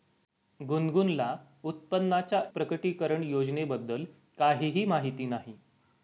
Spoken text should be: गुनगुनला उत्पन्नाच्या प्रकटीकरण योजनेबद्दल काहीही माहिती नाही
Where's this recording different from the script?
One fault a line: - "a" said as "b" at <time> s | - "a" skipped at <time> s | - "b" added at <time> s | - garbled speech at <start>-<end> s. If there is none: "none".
none